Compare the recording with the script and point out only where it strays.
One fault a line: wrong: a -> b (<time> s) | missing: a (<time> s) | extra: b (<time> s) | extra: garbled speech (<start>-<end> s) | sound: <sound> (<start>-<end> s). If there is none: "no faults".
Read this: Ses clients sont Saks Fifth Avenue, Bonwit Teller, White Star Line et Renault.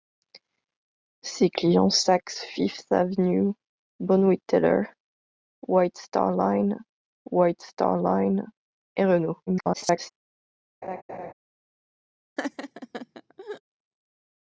missing: sont (1.9 s)
extra: White Star Line (7.3 s)
extra: garbled speech (9.5-10.1 s)
sound: laugh (10.8-11.3 s)
sound: laugh (12.4-13.6 s)